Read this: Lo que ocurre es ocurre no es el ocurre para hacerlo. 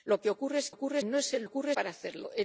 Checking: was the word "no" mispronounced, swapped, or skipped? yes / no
no